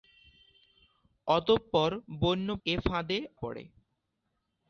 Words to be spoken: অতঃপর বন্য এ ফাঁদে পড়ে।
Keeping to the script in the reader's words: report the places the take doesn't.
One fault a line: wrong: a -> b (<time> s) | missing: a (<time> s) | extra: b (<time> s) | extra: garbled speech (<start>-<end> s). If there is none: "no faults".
no faults